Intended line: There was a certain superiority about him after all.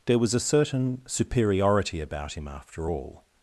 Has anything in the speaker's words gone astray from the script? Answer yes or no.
no